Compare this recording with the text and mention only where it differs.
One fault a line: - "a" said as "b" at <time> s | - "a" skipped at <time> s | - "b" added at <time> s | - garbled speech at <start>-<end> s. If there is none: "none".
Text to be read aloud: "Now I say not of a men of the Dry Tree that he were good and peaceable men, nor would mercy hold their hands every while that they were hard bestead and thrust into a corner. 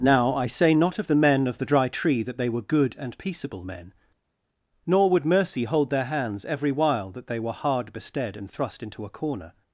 - "a" said as "the" at 1.1 s
- "he" said as "they" at 2.4 s